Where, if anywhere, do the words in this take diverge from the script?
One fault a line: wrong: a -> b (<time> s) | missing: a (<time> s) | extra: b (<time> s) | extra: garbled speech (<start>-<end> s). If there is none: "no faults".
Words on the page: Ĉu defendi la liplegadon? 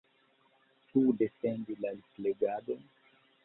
no faults